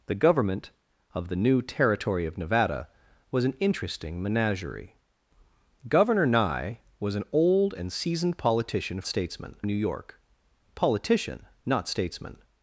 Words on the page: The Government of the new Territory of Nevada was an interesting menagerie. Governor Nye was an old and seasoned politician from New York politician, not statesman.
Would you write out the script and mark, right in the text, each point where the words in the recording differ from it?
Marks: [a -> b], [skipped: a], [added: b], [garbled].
The Government of the new Territory of Nevada was an interesting menagerie. Governor Nye was an old and seasoned politician [from -> statesman] New York politician, not statesman.